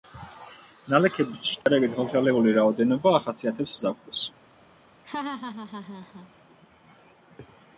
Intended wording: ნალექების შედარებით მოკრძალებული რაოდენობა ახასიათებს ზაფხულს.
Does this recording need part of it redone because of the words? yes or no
no